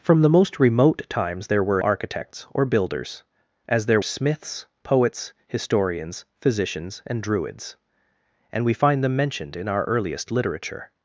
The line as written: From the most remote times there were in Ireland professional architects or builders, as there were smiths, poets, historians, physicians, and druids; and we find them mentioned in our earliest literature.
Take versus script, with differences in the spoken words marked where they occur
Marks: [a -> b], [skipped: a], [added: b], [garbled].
From the most remote times there were [skipped: in Ireland professional] architects or builders, as there [skipped: were] smiths, poets, historians, physicians, and druids; and we find them mentioned in our earliest literature.